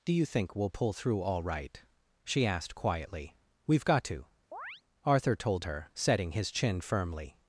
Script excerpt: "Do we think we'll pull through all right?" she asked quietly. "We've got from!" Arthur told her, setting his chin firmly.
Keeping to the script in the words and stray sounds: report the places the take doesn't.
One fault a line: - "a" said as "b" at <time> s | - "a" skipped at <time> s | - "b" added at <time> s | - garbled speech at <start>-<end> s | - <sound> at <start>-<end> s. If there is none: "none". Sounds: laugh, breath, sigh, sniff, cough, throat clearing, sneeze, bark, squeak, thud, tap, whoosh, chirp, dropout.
- "we" said as "you" at 0.1 s
- "from" said as "to" at 4.0 s
- chirp at 4.5-4.8 s